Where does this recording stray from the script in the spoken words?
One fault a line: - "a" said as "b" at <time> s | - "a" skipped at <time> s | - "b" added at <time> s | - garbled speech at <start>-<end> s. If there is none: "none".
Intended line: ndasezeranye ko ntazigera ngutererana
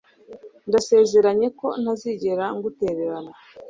none